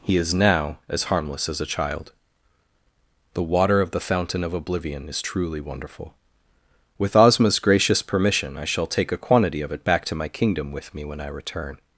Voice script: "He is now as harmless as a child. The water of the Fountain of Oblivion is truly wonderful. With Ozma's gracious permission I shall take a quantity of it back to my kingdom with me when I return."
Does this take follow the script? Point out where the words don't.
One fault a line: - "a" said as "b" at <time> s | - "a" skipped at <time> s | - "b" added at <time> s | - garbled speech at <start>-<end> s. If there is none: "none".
none